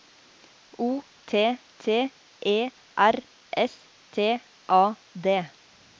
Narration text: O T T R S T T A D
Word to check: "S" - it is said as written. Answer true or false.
true